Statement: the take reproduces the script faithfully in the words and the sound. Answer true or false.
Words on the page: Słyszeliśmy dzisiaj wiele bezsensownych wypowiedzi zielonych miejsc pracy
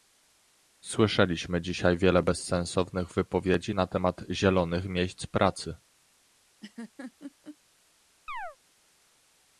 false